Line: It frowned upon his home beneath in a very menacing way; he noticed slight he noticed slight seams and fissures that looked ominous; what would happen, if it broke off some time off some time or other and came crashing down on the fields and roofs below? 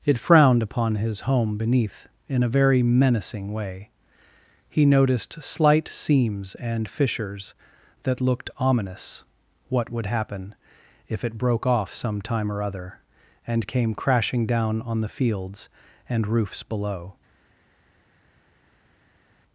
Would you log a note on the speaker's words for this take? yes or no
yes